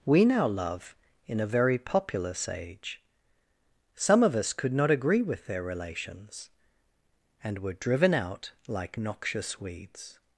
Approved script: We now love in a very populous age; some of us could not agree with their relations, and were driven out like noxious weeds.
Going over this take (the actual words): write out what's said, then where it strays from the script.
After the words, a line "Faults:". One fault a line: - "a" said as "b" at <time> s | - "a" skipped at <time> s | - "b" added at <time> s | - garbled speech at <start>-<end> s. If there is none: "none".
We now love in a very populous age; some of us could not agree with their relations, and were driven out like noxious weeds.
Faults:
none